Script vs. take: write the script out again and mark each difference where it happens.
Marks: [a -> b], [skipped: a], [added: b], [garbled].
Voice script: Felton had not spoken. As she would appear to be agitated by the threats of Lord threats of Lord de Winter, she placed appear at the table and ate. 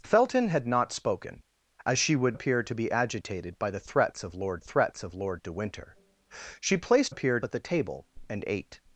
Felton had not spoken. As she would appear to be agitated by the threats of Lord threats of Lord de Winter, she placed appear at the table and ate.